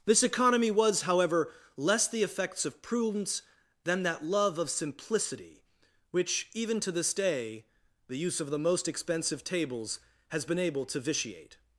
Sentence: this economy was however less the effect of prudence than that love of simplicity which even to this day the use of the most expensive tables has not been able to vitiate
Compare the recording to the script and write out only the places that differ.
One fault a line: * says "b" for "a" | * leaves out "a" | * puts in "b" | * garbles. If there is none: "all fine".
* says "effects" for "effect"
* leaves out "not"